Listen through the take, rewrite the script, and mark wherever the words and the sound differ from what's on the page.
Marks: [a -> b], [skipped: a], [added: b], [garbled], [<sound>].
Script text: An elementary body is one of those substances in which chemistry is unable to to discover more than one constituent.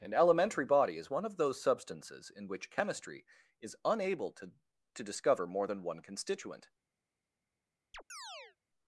An elementary body is one of those substances in which chemistry is unable to to discover more than one constituent. [chirp]